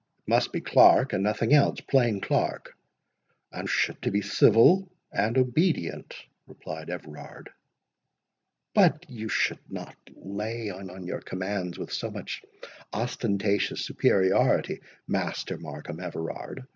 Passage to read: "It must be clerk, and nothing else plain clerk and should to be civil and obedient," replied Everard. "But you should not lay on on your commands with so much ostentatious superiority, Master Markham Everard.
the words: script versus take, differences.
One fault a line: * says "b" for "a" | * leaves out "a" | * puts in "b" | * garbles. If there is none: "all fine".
all fine